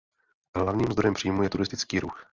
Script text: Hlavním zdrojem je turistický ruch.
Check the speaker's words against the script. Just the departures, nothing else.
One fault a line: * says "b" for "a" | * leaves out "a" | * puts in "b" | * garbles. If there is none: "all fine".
* puts in "příjmů"